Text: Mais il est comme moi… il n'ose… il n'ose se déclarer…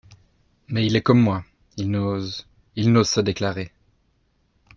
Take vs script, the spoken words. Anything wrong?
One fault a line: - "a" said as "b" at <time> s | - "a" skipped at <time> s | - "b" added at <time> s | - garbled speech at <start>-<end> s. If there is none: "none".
none